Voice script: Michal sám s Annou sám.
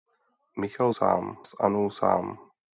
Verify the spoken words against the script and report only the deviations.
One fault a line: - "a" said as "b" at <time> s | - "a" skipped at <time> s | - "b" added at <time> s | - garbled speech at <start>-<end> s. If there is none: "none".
none